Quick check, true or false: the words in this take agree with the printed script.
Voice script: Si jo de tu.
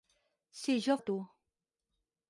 true